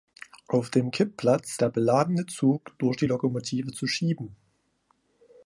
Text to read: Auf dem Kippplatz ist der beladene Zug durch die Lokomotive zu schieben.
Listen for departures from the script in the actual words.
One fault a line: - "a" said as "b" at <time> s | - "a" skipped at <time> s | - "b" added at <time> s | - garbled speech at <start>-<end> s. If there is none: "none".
- "ist" skipped at 1.6 s